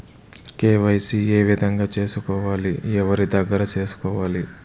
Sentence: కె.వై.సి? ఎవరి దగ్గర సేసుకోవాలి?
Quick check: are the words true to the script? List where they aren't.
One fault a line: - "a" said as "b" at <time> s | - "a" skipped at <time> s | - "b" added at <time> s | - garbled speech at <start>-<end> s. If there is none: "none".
- "ఏ విధంగా సేసుకోవాలి" added at 1.3 s